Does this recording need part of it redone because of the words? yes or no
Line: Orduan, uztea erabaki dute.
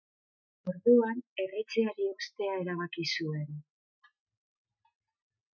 yes